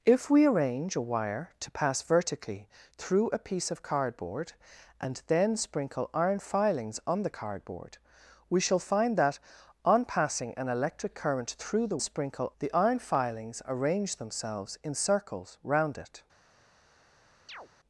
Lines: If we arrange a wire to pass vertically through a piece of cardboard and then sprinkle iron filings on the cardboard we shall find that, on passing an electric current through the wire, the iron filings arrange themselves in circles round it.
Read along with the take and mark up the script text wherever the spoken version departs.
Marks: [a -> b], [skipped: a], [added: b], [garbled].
If we arrange a wire to pass vertically through a piece of cardboard and then sprinkle iron filings on the cardboard we shall find that, on passing an electric current through the [wire, -> sprinkle] the iron filings arrange themselves in circles round it.